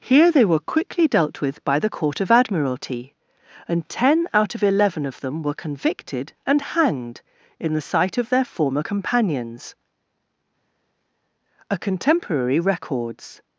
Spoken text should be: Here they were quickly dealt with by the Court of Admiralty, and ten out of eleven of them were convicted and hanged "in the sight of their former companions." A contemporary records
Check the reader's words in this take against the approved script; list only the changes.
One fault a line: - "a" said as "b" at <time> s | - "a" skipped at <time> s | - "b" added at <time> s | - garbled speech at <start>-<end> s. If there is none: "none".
none